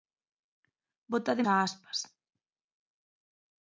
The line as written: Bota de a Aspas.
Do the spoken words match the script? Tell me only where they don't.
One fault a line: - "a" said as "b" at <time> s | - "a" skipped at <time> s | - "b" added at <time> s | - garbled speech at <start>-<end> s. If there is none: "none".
none